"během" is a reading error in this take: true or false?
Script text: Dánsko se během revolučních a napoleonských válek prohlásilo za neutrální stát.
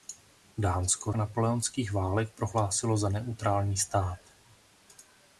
true